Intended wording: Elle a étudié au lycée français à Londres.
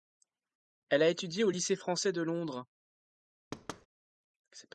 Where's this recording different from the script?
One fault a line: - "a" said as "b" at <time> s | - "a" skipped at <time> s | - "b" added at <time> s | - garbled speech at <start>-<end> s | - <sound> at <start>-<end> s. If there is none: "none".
- "à" said as "de" at 2.1 s
- thud at 3.5-3.9 s